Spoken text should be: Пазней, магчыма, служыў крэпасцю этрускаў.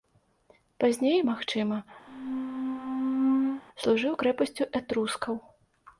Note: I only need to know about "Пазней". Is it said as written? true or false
true